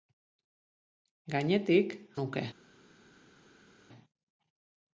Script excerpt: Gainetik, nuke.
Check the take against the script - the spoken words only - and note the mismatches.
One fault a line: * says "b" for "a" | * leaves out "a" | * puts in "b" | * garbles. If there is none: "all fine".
all fine